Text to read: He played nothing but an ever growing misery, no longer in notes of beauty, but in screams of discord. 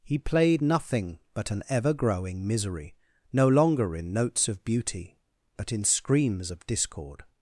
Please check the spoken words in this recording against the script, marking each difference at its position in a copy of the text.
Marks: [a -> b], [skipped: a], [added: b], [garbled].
He played nothing but an ever growing misery, no longer in notes of beauty, but in screams of discord.